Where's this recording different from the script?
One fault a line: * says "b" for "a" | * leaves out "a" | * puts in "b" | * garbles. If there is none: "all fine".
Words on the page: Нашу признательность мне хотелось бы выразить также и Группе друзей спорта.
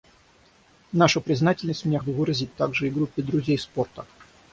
* leaves out "хотелось"